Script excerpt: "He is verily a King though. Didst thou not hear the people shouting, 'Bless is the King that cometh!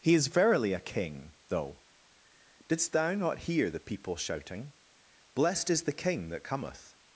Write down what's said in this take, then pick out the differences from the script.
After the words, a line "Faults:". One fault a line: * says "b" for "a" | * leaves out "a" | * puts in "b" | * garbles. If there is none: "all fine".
"He is verily a King though. Didst thou not hear the people shouting, 'Blessed is the King that cometh!
Faults:
* says "Blessed" for "Bless"